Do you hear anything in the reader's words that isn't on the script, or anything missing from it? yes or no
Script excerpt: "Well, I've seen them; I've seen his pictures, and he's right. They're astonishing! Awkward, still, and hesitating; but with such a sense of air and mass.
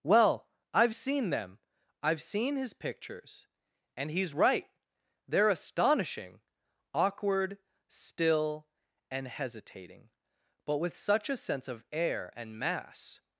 no